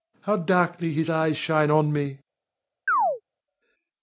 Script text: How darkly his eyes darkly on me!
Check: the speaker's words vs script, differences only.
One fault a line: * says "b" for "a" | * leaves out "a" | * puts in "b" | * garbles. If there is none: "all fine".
* says "shine" for "darkly"